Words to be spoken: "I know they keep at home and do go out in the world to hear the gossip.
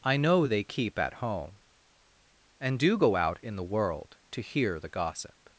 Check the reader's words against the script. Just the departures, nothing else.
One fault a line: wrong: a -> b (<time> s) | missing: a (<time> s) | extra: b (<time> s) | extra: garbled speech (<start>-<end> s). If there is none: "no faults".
no faults